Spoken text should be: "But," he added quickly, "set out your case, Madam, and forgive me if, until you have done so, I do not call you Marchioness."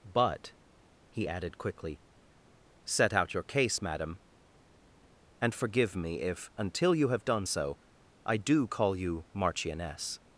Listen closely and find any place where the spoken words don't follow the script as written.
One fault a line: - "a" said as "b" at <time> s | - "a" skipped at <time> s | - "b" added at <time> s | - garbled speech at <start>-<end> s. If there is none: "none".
- "not" skipped at 8.7 s